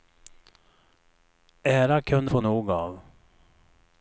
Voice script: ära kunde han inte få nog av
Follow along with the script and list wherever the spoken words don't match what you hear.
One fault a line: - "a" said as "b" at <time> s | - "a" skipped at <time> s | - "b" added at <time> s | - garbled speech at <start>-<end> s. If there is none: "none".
- "han inte" skipped at 2.3 s